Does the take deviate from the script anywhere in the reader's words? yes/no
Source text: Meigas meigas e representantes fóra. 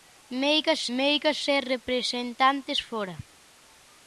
no